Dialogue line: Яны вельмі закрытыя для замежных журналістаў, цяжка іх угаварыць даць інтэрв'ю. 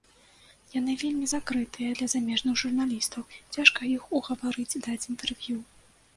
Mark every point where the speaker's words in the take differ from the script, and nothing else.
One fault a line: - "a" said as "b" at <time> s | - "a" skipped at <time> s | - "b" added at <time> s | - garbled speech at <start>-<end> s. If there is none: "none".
none